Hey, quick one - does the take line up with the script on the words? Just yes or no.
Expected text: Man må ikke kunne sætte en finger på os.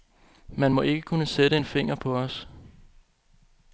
yes